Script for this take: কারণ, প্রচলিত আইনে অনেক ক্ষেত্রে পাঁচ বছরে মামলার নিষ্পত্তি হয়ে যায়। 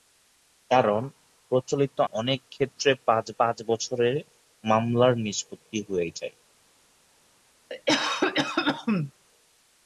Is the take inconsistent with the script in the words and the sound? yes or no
yes